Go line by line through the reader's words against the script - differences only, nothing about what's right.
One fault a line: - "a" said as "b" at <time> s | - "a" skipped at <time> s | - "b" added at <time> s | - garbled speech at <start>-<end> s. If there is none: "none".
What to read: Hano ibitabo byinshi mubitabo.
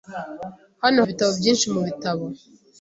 none